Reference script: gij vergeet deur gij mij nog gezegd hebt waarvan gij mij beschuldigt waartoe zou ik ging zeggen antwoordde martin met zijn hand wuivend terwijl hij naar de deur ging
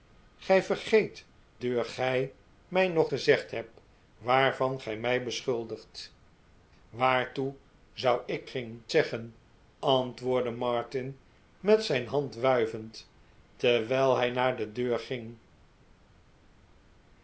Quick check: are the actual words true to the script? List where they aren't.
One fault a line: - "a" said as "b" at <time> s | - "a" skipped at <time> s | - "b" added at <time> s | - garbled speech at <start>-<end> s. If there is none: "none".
none